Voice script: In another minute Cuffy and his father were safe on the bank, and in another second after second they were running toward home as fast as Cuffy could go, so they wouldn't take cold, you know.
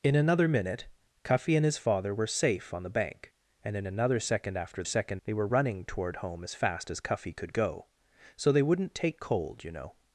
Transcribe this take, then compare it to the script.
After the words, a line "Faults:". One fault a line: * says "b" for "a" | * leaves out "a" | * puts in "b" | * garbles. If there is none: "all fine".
In another minute Cuffy and his father were safe on the bank, and in another second after second they were running toward home as fast as Cuffy could go, so they wouldn't take cold, you know.
Faults:
all fine